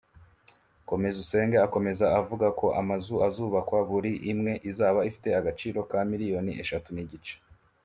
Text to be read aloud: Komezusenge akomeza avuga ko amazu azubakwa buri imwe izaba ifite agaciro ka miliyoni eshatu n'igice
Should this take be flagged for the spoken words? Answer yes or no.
no